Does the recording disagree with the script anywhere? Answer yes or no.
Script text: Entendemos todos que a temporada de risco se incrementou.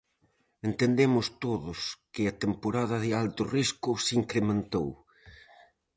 yes